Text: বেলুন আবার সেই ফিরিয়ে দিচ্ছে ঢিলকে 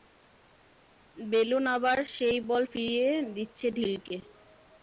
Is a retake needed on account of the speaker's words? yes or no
yes